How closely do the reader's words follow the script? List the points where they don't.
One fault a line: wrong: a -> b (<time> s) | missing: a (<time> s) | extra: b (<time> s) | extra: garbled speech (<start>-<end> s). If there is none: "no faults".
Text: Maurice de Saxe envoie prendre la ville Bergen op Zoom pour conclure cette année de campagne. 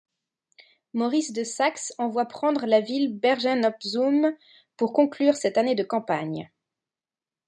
no faults